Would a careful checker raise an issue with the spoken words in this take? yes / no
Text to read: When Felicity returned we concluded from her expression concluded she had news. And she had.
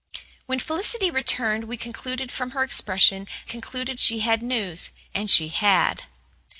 no